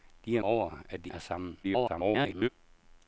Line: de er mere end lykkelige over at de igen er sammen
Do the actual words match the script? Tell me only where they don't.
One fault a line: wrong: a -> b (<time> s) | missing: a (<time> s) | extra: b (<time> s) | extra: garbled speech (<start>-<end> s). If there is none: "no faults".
missing: mere end lykkelige (0.4 s)
missing: igen (1.1 s)
extra: garbled speech (1.6-2.5 s)